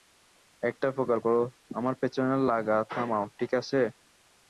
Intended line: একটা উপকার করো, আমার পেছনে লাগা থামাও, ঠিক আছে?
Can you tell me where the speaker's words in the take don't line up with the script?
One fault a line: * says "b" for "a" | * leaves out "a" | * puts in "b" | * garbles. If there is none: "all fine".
all fine